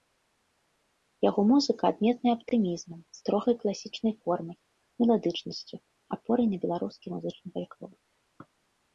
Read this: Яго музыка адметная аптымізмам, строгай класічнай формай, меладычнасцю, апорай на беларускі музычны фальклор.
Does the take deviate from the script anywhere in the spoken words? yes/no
no